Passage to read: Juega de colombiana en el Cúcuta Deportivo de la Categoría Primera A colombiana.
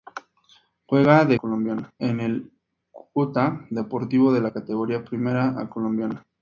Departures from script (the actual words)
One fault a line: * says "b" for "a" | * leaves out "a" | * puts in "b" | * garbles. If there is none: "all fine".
all fine